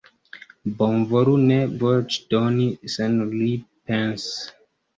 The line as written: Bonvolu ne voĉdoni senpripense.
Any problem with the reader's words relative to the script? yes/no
no